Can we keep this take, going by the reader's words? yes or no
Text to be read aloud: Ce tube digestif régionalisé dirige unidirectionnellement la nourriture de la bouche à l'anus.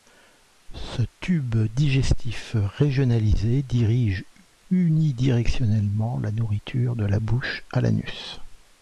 yes